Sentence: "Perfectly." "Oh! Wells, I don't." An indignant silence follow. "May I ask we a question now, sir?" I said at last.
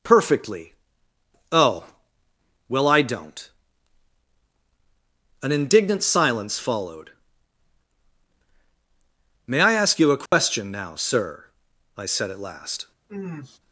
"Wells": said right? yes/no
no